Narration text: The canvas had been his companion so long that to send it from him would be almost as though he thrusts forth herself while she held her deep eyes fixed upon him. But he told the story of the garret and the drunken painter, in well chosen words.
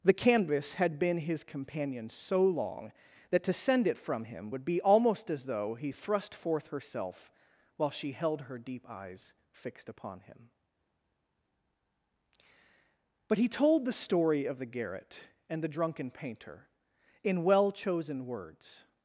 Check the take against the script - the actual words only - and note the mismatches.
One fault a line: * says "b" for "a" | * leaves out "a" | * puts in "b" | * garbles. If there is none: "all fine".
* says "thrust" for "thrusts"